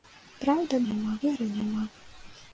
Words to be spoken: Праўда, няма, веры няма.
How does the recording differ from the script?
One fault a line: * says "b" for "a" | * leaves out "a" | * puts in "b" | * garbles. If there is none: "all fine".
all fine